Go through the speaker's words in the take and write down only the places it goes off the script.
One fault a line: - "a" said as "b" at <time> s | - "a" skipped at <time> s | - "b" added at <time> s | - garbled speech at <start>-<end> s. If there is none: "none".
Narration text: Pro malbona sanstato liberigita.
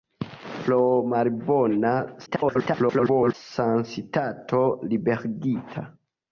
- garbled speech at 2.3-3.3 s